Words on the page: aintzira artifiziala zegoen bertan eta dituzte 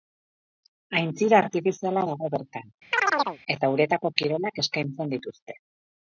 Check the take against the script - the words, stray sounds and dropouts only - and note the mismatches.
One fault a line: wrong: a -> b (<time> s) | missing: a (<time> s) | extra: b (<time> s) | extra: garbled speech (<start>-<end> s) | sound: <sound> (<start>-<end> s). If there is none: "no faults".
wrong: zegoen -> dago (2.1 s)
sound: chirp (2.9-3.4 s)
extra: uretako kirolak eskaintzen (3.8 s)